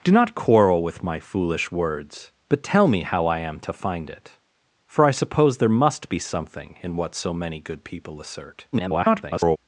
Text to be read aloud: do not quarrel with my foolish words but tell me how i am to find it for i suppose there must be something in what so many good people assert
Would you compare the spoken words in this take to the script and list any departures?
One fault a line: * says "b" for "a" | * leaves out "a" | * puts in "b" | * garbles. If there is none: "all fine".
* garbles